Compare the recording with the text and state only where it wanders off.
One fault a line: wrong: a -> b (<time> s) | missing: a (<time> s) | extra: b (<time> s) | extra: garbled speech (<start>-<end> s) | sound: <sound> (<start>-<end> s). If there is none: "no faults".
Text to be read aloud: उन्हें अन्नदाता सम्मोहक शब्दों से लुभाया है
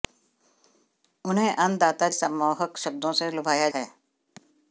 no faults